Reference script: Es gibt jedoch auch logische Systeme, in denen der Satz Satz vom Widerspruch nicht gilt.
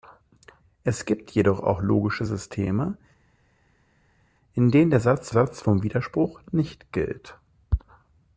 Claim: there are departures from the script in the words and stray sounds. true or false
false